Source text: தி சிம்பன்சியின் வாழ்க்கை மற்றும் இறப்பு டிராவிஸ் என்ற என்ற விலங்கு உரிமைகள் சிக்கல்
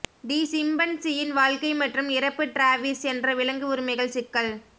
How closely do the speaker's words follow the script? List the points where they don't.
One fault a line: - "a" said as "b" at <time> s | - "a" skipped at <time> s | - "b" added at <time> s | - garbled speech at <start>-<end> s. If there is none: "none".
- "என்ற" skipped at 3.3 s